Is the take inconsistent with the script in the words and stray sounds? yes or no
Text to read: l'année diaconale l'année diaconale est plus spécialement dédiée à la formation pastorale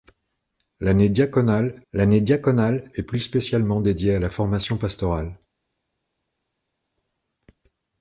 no